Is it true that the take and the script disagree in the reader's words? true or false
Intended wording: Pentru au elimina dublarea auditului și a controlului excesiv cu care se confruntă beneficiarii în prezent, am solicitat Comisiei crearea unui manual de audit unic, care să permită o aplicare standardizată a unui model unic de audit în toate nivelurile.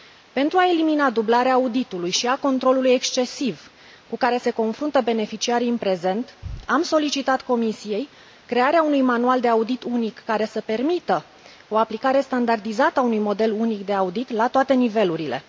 true